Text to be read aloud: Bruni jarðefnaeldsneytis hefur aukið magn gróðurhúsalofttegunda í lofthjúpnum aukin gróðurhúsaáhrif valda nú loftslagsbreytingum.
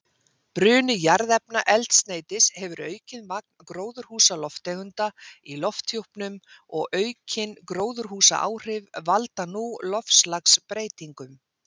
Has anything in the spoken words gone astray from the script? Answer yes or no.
yes